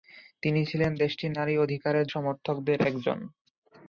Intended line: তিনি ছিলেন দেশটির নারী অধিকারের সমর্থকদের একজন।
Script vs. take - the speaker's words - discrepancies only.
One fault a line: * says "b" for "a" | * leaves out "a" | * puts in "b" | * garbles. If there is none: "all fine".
all fine